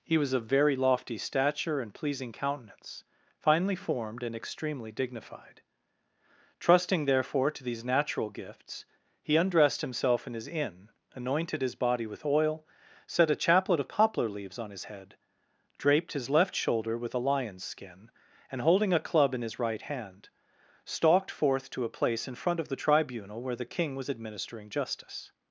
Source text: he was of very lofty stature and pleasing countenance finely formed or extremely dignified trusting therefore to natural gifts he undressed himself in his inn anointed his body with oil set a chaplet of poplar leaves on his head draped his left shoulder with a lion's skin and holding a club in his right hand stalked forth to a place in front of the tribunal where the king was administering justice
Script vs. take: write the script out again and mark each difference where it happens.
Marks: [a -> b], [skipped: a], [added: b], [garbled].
he was of very lofty stature and pleasing countenance finely formed [or -> and] extremely dignified trusting therefore to [added: these] natural gifts he undressed himself in his inn anointed his body with oil set a chaplet of poplar leaves on his head draped his left shoulder with a lion's skin and holding a club in his right hand stalked forth to a place in front of the tribunal where the king was administering justice